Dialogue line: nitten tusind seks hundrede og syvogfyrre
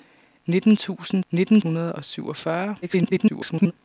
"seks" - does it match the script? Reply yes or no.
no